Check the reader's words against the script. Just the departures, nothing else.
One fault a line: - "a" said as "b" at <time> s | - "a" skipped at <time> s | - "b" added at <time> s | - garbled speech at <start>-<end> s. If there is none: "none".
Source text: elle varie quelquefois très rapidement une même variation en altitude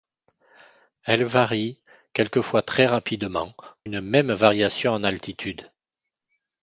none